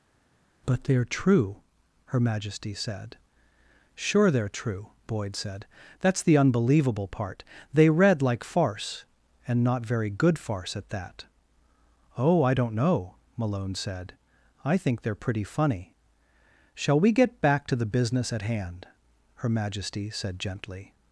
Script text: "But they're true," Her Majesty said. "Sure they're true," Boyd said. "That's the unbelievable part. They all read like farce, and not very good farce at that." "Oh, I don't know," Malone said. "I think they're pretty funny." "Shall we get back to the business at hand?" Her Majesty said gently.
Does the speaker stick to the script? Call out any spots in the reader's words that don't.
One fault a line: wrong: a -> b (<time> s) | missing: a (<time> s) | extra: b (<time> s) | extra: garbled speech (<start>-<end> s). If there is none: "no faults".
missing: all (7.9 s)